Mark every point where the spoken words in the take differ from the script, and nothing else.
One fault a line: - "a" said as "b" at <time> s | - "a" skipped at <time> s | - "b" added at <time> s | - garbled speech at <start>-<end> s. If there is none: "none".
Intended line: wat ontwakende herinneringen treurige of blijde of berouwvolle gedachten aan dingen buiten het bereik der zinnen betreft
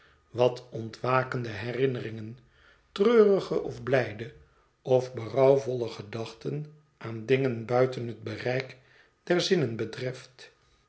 none